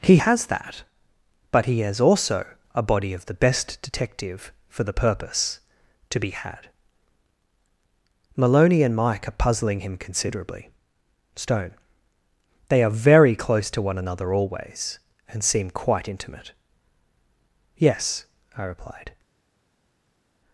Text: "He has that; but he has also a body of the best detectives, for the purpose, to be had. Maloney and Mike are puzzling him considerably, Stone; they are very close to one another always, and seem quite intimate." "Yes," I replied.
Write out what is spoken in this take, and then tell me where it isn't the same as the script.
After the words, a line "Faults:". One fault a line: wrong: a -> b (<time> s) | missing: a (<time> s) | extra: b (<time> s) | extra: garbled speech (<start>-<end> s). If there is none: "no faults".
"He has that; but he has also a body of the best detective, for the purpose, to be had. Maloney and Mike are puzzling him considerably, Stone; they are very close to one another always, and seem quite intimate." "Yes," I replied.
Faults:
wrong: detectives -> detective (3.8 s)